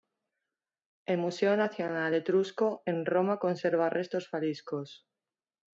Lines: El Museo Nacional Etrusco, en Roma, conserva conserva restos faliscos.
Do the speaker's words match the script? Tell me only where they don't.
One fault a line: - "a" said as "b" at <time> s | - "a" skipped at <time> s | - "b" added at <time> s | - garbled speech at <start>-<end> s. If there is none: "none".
- "conserva" skipped at 3.9 s